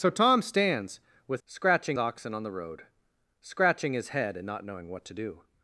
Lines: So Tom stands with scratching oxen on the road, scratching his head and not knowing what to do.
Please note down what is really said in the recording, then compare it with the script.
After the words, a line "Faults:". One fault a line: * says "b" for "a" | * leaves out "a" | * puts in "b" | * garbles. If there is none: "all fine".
So Tom stands with scratching oxen on the road, scratching his head and not knowing what to do.
Faults:
all fine